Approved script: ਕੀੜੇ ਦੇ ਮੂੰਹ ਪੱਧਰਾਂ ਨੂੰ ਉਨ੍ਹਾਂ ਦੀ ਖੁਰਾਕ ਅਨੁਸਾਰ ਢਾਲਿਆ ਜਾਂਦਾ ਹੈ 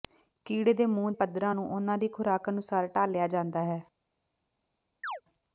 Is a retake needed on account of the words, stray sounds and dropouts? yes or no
yes